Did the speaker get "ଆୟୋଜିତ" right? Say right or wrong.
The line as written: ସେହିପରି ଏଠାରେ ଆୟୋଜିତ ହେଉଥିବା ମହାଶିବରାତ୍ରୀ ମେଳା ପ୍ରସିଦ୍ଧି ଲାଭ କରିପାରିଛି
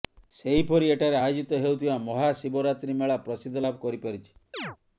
right